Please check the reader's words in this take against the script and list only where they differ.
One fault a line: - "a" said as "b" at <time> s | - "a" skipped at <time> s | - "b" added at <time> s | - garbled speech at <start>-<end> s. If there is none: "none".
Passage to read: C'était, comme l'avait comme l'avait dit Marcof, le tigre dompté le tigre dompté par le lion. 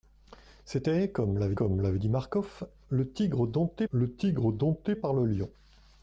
none